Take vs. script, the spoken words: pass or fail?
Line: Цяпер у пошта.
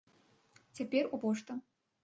pass